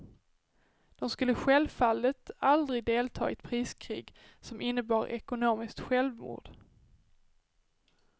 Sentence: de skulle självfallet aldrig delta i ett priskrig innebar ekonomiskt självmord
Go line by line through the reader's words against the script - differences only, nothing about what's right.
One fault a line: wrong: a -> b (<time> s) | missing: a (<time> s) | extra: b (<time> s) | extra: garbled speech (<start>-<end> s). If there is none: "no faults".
extra: som (4.4 s)